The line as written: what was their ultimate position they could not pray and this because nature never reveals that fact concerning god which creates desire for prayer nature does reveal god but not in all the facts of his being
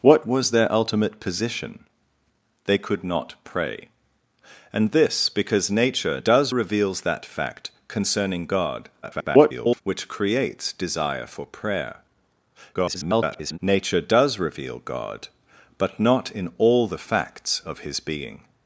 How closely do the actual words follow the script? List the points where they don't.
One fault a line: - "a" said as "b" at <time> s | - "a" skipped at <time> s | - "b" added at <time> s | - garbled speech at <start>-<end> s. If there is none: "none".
- "never" said as "does" at 6.2 s
- garbled speech at 9.0-9.8 s
- garbled speech at 12.7-13.6 s